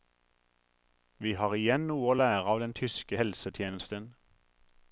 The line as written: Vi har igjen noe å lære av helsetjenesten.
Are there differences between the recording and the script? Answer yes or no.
yes